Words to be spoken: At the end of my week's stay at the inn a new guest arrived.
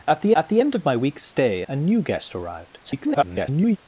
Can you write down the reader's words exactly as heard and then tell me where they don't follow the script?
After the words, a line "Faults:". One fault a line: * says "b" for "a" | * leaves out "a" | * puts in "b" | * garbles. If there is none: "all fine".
At the at the end of my week's stay a new guest arrived. [garbled]
Faults:
* puts in "at the"
* leaves out "at the inn"
* garbles